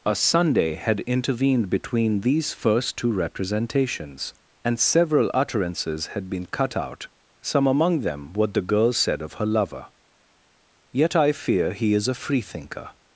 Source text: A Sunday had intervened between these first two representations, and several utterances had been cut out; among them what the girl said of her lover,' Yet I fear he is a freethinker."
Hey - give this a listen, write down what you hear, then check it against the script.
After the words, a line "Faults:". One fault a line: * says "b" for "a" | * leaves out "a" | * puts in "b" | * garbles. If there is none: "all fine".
A Sunday had intervened between these first two representations, and several utterances had been cut out; some among them what the girl said of her lover,' Yet I fear he is a freethinker."
Faults:
* puts in "some"